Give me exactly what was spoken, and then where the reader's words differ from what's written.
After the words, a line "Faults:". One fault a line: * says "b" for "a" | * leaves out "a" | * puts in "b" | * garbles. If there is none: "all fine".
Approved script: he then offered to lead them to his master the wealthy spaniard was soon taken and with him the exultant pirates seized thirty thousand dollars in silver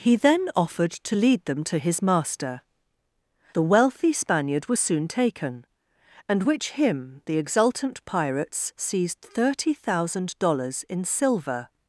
he then offered to lead them to his master the wealthy spaniard was soon taken and which him the exultant pirates seized thirty thousand dollars in silver
Faults:
* says "which" for "with"